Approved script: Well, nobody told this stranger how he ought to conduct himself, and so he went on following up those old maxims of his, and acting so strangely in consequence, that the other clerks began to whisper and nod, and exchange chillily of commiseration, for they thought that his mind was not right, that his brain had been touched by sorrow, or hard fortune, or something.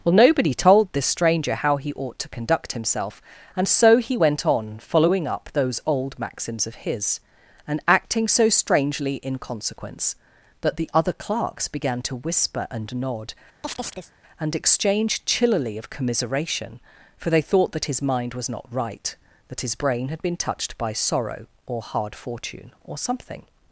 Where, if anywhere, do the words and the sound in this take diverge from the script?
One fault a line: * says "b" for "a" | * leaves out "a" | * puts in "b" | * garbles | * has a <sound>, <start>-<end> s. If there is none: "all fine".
* has a chirp, 13.6-14.1 s